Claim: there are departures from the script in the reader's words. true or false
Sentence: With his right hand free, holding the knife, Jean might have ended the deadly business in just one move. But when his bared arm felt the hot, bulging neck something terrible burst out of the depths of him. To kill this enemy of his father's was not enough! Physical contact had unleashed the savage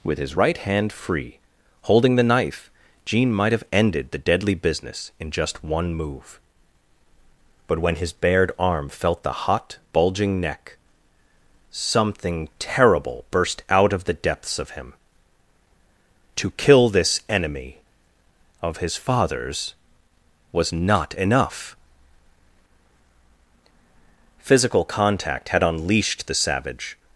false